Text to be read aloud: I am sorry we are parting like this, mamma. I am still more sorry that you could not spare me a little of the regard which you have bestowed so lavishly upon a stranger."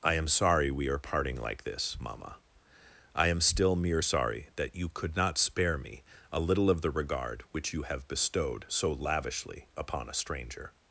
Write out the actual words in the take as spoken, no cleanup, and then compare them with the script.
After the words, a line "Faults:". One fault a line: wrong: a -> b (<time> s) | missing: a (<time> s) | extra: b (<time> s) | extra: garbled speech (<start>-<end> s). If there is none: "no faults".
I am sorry we are parting like this, mamma. I am still mere sorry that you could not spare me a little of the regard which you have bestowed so lavishly upon a stranger."
Faults:
wrong: more -> mere (3.8 s)